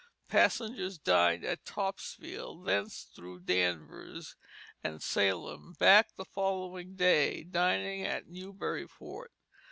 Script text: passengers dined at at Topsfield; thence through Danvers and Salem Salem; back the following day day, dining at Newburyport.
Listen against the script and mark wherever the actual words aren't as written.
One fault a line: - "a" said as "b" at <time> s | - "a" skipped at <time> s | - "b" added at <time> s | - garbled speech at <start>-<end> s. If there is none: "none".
- "at" skipped at 1.6 s
- "Salem" skipped at 5.7 s
- "day" skipped at 7.4 s